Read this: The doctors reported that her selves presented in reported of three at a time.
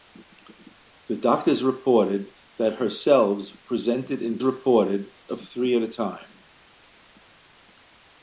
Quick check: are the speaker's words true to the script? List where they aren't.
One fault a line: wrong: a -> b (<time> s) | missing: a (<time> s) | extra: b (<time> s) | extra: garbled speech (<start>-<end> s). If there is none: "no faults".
no faults